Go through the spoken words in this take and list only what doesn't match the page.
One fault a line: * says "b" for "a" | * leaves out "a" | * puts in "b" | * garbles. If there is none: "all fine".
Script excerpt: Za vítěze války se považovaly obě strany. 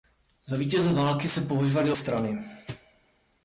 * leaves out "obě"